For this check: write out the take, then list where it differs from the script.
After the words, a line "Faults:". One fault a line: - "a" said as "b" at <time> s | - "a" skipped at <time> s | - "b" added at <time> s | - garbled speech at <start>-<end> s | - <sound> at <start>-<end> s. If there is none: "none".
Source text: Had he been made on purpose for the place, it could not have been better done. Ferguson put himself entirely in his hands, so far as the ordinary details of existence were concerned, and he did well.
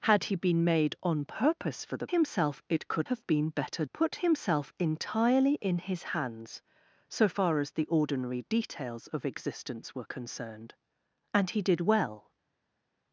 Had he been made on purpose for the himself, it could have been better put himself entirely in his hands, so far as the ordinary details of existence were concerned, and he did well.
Faults:
- "place" said as "himself" at 2.1 s
- "not" skipped at 3.1 s
- "done Ferguson" skipped at 3.8 s